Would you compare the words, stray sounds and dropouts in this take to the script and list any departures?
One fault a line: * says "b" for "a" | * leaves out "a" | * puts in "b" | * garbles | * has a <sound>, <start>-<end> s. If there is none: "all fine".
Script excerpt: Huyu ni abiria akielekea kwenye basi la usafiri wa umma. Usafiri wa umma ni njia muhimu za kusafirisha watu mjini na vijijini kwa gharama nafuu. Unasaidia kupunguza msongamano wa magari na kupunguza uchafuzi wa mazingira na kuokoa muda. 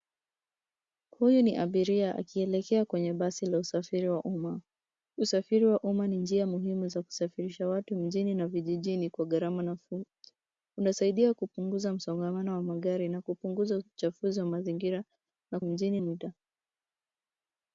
* says "mjini" for "kuokoa"